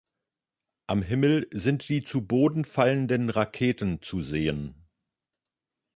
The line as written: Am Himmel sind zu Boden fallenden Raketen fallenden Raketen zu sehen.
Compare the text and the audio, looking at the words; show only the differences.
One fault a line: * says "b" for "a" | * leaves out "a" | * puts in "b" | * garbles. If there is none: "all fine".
* puts in "die"
* leaves out "fallenden Raketen"